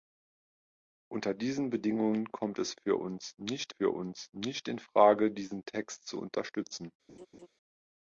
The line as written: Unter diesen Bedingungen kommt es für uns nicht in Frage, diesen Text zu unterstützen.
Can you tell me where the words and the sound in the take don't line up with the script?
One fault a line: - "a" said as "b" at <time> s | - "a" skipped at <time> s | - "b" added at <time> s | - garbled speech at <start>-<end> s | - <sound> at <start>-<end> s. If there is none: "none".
- "für uns nicht" added at 3.8 s
- laugh at 7.1-7.5 s